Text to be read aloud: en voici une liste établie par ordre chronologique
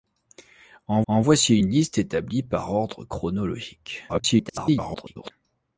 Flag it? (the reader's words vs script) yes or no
yes